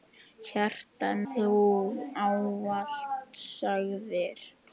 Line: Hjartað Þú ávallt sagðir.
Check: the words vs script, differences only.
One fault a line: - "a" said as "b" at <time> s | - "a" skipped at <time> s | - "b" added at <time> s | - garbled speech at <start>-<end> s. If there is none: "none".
none